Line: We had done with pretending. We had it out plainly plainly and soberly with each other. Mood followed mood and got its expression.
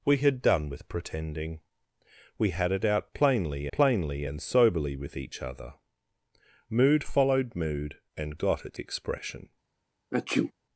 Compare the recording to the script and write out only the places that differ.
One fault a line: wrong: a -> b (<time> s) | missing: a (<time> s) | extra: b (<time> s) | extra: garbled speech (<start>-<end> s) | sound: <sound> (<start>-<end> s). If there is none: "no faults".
sound: sneeze (10.1-10.5 s)